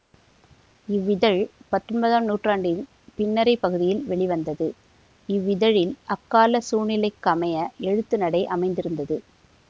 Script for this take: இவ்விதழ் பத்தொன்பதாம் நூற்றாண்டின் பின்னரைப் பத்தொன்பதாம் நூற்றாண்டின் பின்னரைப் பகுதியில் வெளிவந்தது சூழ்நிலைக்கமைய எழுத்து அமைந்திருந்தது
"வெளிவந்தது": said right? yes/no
no